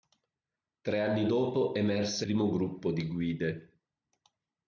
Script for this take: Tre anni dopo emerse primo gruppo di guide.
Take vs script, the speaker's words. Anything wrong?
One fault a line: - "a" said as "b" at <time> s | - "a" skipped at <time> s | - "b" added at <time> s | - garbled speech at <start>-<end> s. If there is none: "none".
none